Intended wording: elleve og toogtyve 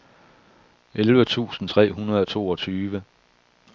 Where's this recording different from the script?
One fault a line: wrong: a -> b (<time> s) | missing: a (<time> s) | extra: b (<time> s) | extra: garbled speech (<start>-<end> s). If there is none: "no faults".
extra: tusind tre hundrede (1.2 s)